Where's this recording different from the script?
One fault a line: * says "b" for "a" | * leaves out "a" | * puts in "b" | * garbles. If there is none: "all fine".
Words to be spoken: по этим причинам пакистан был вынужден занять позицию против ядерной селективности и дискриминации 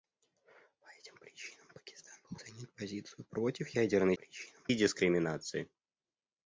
* leaves out "вынужден"
* says "причинам" for "селективности"